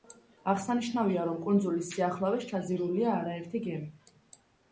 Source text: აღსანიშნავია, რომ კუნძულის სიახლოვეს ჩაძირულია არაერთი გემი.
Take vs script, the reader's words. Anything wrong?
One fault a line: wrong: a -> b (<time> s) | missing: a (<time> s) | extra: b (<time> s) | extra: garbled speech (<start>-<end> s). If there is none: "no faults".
no faults